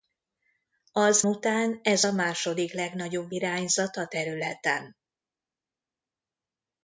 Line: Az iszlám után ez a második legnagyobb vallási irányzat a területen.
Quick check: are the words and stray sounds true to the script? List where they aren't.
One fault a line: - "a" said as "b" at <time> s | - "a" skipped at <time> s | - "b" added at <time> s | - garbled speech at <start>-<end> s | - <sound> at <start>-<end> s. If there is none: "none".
- "iszlám" skipped at 1.2 s
- "vallási" skipped at 3.3 s